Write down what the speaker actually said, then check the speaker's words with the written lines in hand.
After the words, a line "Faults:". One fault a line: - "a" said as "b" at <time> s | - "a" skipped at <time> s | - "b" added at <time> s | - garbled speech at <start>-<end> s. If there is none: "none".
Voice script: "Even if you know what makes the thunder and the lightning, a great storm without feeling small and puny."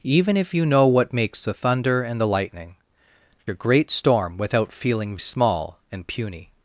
"Even if you know what makes the thunder and the lightning, a great storm without feeling small and puny."
Faults:
none